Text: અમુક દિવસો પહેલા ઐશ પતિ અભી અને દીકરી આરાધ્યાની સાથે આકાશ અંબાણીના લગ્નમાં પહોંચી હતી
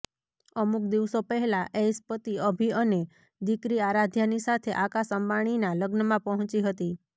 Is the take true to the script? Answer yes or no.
yes